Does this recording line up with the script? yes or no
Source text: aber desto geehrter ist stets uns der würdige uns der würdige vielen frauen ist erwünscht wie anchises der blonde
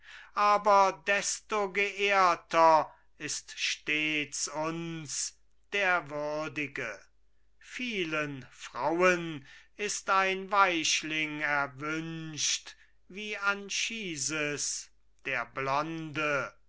no